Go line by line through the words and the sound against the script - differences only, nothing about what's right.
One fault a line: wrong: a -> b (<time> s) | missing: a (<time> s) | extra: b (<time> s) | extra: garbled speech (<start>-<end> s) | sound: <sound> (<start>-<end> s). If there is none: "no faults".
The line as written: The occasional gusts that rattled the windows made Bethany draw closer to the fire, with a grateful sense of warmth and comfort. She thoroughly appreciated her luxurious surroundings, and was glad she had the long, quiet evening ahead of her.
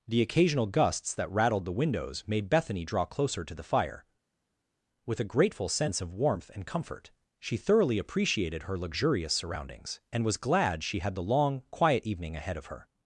no faults